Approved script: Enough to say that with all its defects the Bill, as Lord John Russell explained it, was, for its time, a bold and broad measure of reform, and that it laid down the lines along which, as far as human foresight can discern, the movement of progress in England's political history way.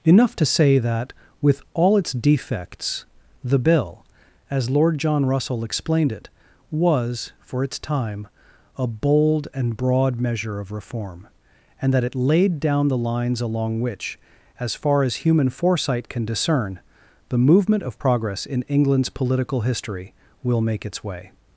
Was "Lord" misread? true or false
false